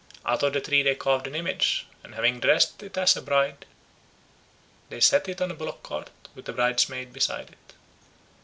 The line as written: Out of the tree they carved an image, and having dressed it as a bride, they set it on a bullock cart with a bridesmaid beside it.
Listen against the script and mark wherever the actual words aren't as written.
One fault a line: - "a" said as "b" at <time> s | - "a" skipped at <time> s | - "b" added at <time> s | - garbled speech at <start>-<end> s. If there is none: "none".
none